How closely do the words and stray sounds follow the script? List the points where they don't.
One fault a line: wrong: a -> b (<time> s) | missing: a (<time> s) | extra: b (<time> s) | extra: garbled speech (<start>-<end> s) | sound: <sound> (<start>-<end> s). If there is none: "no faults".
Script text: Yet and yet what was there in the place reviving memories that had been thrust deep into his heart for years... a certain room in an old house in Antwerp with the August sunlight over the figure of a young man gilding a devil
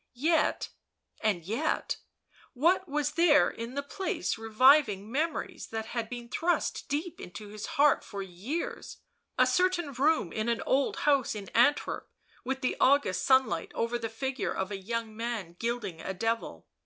no faults